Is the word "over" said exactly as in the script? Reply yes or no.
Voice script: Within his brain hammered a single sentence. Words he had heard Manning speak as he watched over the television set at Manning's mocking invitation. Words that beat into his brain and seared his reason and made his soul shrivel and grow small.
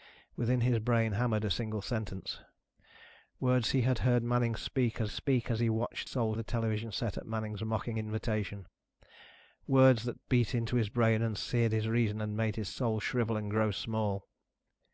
no